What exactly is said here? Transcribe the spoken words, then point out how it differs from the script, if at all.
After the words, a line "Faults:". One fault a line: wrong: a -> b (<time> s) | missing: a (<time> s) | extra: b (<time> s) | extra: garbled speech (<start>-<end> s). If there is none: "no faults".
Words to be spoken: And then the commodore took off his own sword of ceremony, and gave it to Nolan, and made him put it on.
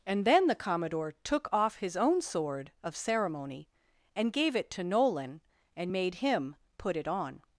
And then the commodore took off his own sword of ceremony, and gave it to Nolan, and made him put it on.
Faults:
no faults